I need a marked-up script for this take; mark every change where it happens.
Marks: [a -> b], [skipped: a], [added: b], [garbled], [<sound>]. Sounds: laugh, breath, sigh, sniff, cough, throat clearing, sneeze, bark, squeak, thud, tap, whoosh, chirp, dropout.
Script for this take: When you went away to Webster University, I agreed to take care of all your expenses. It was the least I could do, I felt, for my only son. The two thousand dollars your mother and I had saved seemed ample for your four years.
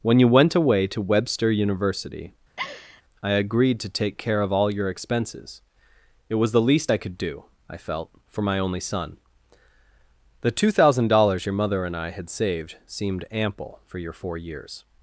When you went away to Webster University, [laugh] I agreed to take care of all your expenses. It was the least I could do, I felt, for my only son. The two thousand dollars your mother and I had saved seemed ample for your four years.